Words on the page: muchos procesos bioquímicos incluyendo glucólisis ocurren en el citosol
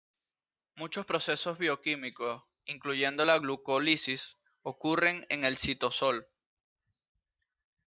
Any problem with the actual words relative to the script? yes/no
yes